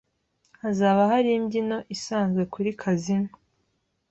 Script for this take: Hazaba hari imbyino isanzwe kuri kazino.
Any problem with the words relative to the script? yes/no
no